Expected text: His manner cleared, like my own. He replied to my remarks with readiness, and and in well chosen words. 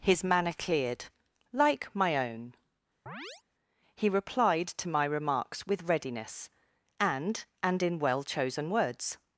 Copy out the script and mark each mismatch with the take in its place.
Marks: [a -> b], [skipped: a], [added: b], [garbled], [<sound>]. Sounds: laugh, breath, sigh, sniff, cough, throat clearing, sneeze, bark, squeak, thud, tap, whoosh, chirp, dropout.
His manner cleared, like my own. [chirp] He replied to my remarks with readiness, and and in well chosen words.